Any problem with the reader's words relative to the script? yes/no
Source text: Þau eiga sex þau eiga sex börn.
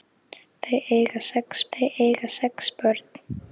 no